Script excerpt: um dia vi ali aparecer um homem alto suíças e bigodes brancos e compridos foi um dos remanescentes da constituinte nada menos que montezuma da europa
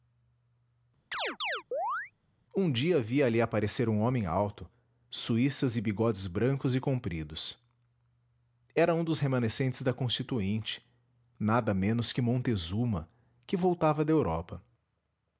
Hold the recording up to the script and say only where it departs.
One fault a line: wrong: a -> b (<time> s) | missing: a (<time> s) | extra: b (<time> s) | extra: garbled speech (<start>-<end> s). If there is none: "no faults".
wrong: foi -> era (8.7 s)
extra: que voltava (13.5 s)